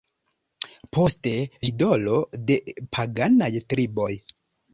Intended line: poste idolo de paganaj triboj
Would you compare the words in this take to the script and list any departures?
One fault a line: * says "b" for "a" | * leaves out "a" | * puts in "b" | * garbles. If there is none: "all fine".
all fine